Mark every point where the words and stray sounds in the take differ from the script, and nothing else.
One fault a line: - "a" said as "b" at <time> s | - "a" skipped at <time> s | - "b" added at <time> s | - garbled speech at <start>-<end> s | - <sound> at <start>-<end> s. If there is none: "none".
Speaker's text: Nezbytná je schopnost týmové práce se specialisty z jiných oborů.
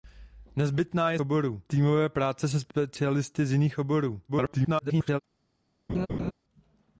- "schopnost" said as "oborů" at 1.2 s
- garbled speech at 4.3-5.2 s
- laugh at 5.9-6.3 s